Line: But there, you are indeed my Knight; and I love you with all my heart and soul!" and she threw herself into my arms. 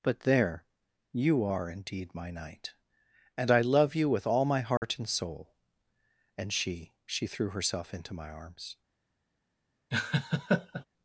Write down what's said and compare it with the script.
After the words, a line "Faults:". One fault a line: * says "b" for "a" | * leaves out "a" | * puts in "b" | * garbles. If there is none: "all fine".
But there, you are indeed my Knight; and I love you with all my heart and soul!" and she she threw herself into my arms.
Faults:
* puts in "she"